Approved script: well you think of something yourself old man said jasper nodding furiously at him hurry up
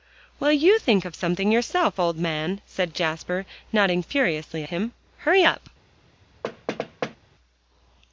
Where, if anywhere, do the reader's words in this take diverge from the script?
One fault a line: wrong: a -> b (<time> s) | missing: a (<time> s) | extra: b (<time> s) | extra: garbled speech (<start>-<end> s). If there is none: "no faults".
missing: at (4.7 s)